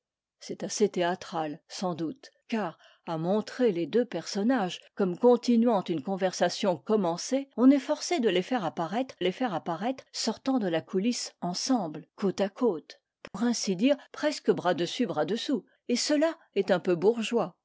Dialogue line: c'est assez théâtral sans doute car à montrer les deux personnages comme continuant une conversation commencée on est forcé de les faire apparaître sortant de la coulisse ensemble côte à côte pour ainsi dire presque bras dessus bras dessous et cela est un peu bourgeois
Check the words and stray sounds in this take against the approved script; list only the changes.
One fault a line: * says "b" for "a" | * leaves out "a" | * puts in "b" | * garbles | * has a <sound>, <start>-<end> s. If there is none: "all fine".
* puts in "les faire apparaître"
* has a dropout, 13.3-13.3 s